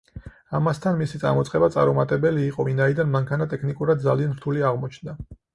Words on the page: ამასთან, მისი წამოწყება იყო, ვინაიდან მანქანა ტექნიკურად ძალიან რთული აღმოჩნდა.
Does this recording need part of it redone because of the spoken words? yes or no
yes